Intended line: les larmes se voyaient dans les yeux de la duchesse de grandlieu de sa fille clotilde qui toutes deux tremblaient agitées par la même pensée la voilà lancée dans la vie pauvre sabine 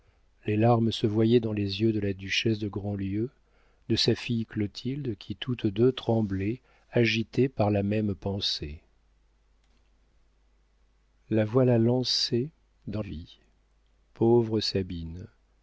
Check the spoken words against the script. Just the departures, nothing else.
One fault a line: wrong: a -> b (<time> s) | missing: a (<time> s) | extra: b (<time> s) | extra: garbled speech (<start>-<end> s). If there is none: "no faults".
missing: la (13.0 s)